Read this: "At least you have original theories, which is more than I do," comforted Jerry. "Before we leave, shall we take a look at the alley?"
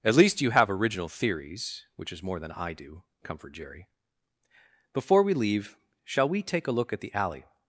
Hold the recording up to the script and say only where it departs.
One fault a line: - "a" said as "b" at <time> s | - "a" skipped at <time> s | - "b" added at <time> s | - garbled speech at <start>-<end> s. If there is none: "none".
- "comforted" said as "comfort" at 3.2 s